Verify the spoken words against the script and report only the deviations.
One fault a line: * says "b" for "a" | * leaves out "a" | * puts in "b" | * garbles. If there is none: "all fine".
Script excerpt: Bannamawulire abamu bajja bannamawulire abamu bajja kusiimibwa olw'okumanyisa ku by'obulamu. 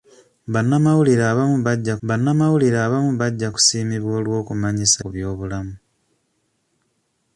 all fine